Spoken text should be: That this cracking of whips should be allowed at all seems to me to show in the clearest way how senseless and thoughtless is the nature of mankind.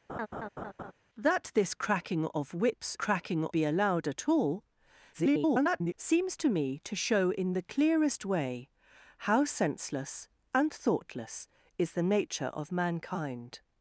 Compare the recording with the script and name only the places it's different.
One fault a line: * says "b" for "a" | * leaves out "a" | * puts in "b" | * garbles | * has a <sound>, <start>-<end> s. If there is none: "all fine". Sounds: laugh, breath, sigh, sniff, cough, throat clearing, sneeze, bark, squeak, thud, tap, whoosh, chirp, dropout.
* has a laugh, 0.1-0.9 s
* says "cracking" for "should"
* garbles